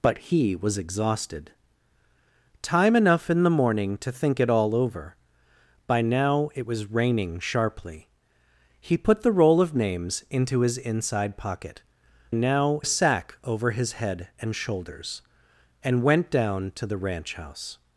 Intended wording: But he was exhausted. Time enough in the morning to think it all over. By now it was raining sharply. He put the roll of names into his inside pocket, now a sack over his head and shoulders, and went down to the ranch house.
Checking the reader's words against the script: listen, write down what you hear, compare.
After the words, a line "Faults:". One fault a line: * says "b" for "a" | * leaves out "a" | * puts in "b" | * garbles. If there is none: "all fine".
But he was exhausted. Time enough in the morning to think it all over. By now it was raining sharply. He put the roll of names into his inside pocket, now a sack over his head and shoulders, and went down to the ranch house.
Faults:
all fine